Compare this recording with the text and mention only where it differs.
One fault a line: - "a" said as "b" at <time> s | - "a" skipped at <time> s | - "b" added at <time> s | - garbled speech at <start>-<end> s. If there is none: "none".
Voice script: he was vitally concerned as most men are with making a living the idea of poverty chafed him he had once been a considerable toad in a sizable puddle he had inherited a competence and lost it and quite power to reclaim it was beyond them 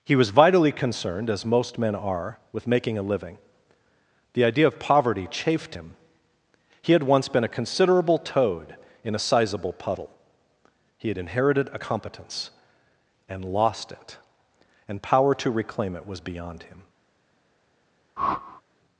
- "quite" skipped at 15.0 s
- "them" said as "him" at 16.6 s